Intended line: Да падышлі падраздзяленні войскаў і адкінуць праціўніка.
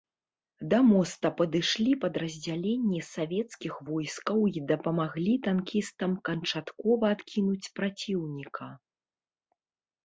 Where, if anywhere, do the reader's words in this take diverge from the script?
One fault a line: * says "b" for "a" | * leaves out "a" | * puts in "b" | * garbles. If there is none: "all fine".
* puts in "моста"
* puts in "савецкіх"
* puts in "дапамаглі танкістам канчаткова"